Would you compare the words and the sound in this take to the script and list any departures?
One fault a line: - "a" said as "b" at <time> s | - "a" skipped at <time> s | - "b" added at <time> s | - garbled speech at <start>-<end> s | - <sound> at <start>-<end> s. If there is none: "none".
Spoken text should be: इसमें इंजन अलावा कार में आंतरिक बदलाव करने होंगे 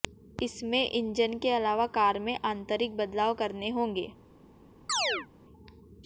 - "के" added at 1.4 s
- chirp at 4.9-5.3 s